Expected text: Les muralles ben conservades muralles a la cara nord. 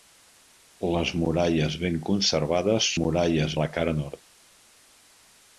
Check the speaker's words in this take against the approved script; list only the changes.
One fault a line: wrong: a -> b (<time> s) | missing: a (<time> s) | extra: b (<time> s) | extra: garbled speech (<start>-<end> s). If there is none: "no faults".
no faults